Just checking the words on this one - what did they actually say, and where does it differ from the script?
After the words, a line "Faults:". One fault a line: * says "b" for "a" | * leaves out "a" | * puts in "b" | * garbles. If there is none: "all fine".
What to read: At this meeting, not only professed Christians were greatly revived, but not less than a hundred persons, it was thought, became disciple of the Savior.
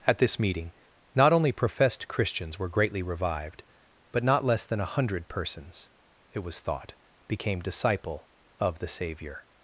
At this meeting, not only professed Christians were greatly revived, but not less than a hundred persons, it was thought, became disciple of the Savior.
Faults:
all fine